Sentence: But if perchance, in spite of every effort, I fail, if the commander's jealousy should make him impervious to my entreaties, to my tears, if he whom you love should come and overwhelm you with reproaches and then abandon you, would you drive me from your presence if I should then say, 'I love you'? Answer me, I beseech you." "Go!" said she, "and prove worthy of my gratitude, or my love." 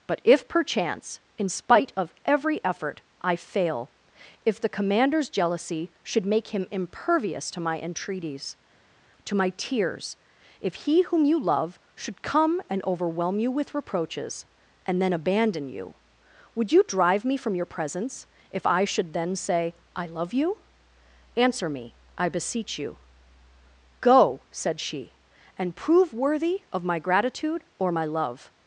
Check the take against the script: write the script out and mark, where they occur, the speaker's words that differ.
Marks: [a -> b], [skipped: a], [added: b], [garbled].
But if perchance, in spite of every effort, I fail, if the commander's jealousy should make him impervious to my entreaties, to my tears, if he whom you love should come and overwhelm you with reproaches and then abandon you, would you drive me from your presence if I should then say, 'I love you'? Answer me, I beseech you." "Go!" said she, "and prove worthy of my gratitude, or my love."